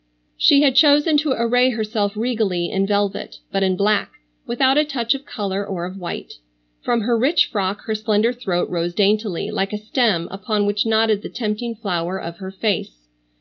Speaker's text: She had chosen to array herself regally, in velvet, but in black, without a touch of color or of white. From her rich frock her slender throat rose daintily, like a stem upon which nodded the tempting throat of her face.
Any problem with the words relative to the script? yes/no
yes